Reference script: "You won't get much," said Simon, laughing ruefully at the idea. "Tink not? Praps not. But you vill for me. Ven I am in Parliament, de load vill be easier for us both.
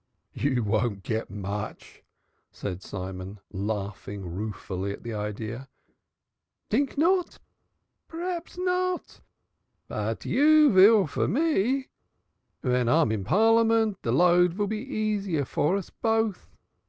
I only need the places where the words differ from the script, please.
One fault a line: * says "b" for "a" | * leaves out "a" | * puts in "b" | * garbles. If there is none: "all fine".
all fine